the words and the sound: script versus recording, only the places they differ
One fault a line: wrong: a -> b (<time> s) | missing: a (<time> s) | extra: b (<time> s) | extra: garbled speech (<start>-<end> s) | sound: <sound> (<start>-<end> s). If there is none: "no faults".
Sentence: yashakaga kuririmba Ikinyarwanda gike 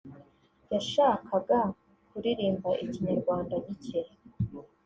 no faults